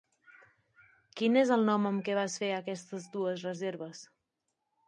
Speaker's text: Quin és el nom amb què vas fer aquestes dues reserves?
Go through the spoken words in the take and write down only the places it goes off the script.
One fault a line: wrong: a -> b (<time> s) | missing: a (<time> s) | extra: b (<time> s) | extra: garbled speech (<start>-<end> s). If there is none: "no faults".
no faults